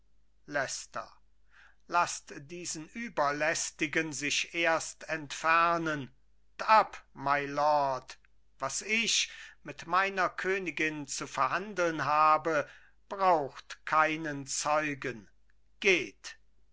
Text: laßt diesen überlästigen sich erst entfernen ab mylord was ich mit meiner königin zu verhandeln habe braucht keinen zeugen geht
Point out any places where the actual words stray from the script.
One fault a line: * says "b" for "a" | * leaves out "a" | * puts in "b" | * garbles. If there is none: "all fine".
all fine